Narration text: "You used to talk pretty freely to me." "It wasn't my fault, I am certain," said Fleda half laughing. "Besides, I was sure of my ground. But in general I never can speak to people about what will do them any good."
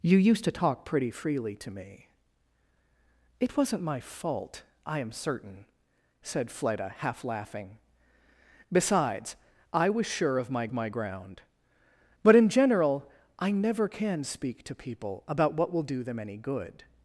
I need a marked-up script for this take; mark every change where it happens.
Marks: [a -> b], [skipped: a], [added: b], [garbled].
"You used to talk pretty freely to me." "It wasn't my fault, I am certain," said Fleda half laughing. "Besides, I was sure of my [added: my] ground. But in general I never can speak to people about what will do them any good."